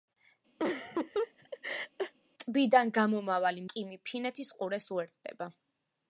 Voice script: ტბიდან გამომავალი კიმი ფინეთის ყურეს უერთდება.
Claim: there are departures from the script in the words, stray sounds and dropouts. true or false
true